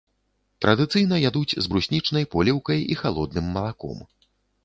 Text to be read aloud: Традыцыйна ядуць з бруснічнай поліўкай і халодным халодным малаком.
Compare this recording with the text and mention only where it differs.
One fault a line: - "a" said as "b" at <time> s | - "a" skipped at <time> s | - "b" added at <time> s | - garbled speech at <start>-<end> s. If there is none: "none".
- "халодным" skipped at 3.4 s